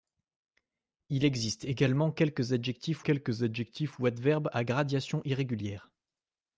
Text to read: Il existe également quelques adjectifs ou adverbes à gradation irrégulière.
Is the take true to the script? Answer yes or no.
no